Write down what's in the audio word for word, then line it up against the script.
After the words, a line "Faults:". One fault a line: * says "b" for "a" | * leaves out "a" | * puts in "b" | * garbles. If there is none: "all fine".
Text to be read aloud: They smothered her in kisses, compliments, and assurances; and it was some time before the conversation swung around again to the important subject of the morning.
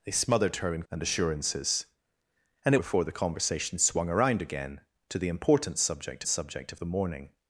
They smothered her in and assurances; and it before the conversation swung around again to the important subject subject of the morning.
Faults:
* leaves out "kisses compliments"
* leaves out "was some time"
* puts in "subject"